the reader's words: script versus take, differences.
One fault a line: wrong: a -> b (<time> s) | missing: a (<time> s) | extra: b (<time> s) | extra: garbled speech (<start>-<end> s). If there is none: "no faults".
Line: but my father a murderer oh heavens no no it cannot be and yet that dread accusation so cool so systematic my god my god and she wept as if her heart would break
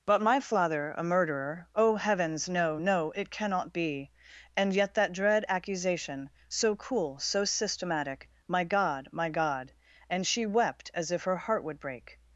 no faults